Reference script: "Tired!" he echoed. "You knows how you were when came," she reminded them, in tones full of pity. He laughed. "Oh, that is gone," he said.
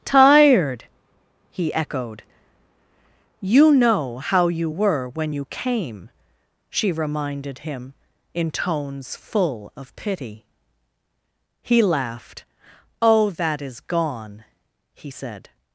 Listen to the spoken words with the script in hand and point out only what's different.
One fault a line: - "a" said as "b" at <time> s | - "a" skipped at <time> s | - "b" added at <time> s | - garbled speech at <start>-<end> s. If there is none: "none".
- "knows" said as "know" at 3.7 s
- "you" added at 5.3 s
- "them" said as "him" at 7.7 s